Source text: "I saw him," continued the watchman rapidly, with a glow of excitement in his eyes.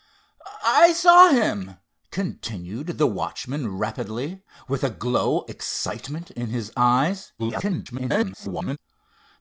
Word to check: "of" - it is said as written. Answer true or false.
false